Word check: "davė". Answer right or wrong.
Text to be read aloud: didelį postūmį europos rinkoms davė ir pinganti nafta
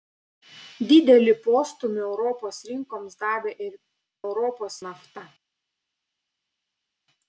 right